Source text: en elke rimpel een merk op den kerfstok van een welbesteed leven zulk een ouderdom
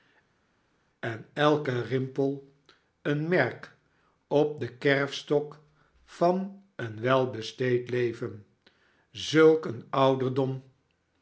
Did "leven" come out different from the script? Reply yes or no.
no